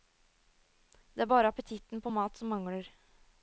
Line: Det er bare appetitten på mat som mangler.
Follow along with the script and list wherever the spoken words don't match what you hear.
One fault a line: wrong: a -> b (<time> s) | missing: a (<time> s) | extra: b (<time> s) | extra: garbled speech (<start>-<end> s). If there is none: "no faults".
no faults